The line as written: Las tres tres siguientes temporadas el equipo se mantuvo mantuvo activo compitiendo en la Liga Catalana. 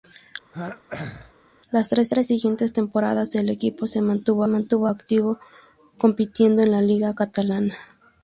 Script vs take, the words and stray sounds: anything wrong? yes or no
yes